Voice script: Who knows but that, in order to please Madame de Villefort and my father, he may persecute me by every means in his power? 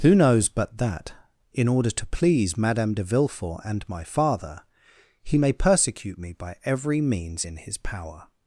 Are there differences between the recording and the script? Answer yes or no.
no